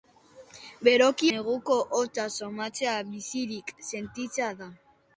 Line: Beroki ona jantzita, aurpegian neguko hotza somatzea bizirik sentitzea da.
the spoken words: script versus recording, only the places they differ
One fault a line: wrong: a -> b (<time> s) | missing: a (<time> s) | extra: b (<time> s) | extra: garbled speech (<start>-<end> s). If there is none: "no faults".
missing: ona jantzita aurpegian (1.3 s)